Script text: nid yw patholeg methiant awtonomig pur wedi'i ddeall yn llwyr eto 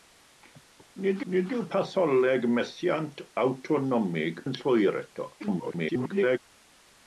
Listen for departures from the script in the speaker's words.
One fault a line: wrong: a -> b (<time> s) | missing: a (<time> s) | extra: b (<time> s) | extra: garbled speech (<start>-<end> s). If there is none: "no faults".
extra: nid (1.3 s)
missing: pur wedi'i ddeall (4.4 s)
extra: garbled speech (5.4-6.4 s)